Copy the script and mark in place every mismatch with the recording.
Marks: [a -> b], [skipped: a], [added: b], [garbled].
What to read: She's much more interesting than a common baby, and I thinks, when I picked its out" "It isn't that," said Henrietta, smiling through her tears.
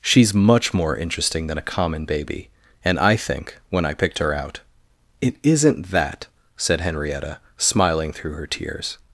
She's much more interesting than a common baby, and I [thinks, -> think] when I picked [its -> her] out" "It isn't that," said Henrietta, smiling through her tears.